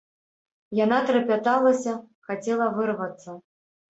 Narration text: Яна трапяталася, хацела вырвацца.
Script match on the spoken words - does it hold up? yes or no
yes